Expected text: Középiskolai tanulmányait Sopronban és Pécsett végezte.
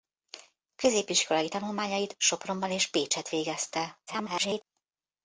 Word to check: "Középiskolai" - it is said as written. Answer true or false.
true